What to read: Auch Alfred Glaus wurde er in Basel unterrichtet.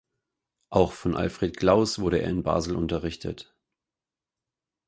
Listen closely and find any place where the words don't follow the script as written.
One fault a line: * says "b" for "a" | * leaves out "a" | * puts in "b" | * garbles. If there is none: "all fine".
* puts in "von"